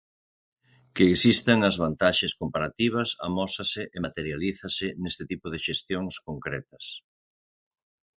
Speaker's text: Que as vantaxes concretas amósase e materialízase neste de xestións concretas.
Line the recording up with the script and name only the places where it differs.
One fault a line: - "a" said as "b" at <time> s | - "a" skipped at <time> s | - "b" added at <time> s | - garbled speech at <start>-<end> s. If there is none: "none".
- "existan" added at 1.1 s
- "concretas" said as "comparativas" at 2.4 s
- "tipo" added at 5.3 s